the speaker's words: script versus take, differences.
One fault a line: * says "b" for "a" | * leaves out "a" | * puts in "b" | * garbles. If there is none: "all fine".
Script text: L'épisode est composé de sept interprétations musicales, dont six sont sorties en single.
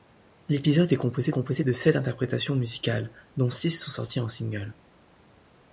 * puts in "composé"